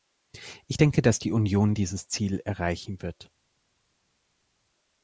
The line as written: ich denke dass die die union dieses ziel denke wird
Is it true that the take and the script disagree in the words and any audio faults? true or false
true